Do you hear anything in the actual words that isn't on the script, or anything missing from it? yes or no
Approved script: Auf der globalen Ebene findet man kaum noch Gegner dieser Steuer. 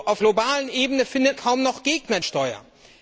yes